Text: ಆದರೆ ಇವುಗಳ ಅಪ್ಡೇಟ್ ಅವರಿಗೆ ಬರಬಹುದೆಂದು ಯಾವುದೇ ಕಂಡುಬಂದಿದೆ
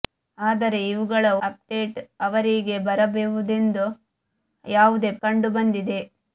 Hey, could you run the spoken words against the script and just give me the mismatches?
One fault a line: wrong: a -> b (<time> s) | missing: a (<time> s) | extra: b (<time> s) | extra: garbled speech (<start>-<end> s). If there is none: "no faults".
no faults